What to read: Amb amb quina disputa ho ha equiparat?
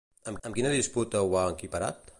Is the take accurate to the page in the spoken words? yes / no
yes